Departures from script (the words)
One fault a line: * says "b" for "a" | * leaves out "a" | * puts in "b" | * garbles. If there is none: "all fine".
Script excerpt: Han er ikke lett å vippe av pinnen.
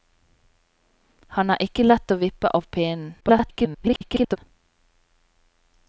* garbles